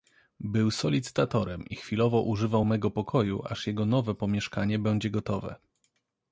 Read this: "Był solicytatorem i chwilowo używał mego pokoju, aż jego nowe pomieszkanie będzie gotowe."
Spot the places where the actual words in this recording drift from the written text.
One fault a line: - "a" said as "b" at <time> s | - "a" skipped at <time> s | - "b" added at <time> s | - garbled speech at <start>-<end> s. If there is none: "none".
none